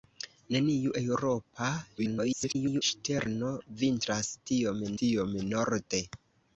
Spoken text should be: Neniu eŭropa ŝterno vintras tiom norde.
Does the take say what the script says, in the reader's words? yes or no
no